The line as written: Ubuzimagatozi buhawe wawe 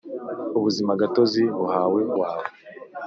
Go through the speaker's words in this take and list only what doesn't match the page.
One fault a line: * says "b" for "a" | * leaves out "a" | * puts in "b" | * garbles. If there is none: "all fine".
all fine